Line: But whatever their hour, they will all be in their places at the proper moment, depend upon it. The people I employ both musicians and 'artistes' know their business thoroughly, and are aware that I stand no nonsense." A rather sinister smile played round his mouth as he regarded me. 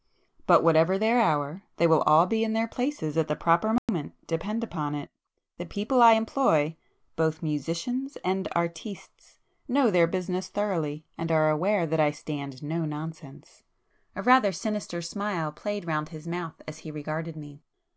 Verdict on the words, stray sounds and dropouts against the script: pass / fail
fail